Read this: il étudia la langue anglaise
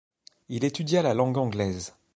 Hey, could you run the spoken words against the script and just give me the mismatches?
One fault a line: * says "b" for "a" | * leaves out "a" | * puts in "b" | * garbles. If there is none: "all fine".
all fine